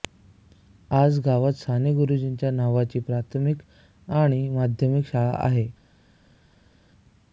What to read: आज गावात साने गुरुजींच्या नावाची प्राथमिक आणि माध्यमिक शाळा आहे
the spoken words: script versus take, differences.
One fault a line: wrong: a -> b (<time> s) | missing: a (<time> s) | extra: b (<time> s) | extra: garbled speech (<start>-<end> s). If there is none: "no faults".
no faults